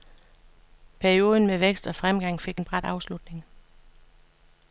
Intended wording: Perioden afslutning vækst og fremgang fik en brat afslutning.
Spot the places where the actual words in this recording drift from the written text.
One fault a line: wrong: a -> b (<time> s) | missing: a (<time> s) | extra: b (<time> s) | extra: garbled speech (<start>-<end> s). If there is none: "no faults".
wrong: afslutning -> med (1.5 s)